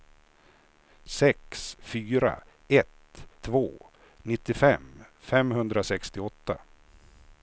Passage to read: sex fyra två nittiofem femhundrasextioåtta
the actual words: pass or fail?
fail